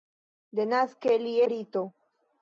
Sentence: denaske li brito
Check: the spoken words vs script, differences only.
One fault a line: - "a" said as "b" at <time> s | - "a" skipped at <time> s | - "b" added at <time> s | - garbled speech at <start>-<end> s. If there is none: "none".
none